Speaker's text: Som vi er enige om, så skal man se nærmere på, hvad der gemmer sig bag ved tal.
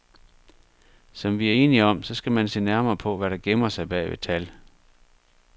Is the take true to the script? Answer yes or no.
yes